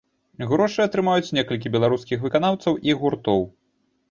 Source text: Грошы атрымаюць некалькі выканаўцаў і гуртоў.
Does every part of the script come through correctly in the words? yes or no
no